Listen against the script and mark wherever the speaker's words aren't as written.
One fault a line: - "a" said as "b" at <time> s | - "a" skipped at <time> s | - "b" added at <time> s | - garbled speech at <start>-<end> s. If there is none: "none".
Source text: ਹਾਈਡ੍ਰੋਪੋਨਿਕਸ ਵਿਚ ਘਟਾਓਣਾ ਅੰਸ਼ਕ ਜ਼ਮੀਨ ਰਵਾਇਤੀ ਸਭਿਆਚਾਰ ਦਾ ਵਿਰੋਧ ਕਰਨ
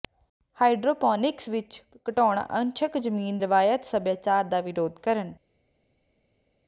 none